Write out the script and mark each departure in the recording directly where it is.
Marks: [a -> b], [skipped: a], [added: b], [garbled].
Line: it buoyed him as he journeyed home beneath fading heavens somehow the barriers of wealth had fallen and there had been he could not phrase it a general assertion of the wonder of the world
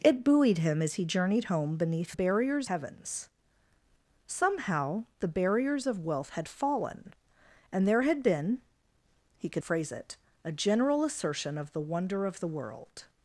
it buoyed him as he journeyed home beneath [fading -> barriers] heavens somehow the barriers of wealth had fallen and there had been he could [skipped: not] phrase it a general assertion of the wonder of the world